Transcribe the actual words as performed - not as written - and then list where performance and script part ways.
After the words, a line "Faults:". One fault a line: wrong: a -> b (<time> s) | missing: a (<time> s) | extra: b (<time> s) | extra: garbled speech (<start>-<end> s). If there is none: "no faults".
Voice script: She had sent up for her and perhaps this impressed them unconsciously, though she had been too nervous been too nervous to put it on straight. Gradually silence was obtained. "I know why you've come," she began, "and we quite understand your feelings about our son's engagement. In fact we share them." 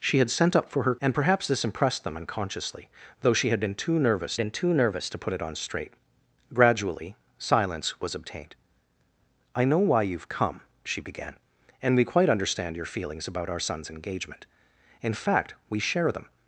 She had sent up for her and perhaps this impressed them unconsciously, though she had been too nervous been too nervous to put it on straight. Gradually silence was obtained. "I know why you've come," she began, "and we quite understand your feelings about our son's engagement. In fact we share them."
Faults:
no faults